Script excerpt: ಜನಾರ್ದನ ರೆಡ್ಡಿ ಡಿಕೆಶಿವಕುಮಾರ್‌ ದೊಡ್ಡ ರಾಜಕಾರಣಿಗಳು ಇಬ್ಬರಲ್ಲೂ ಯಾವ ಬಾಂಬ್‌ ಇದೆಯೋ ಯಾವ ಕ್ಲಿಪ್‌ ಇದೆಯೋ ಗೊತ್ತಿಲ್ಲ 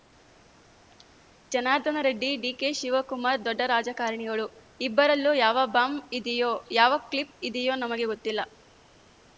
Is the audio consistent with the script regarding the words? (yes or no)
no